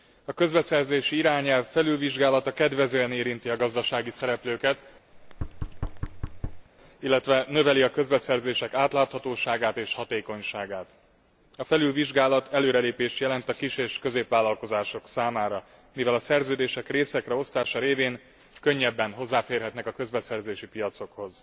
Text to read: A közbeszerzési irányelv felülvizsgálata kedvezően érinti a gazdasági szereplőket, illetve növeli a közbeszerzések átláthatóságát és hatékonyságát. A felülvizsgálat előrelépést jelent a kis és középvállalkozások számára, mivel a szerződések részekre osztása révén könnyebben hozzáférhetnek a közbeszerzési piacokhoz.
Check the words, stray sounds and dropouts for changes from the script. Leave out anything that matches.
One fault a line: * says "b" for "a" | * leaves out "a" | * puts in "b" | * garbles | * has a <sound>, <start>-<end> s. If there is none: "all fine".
* has a thud, 5.1-6.7 s